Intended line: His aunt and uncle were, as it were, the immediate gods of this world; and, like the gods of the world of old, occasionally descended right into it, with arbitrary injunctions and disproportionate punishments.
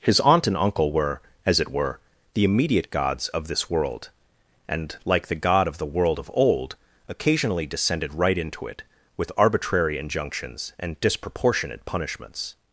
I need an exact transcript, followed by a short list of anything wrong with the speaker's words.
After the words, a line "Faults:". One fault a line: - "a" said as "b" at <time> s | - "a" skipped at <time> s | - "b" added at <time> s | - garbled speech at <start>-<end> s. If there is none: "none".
His aunt and uncle were, as it were, the immediate gods of this world; and, like the god of the world of old, occasionally descended right into it, with arbitrary injunctions and disproportionate punishments.
Faults:
- "gods" said as "god" at 5.3 s